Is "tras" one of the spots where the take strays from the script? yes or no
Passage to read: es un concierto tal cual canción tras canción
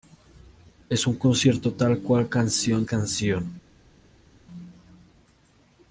yes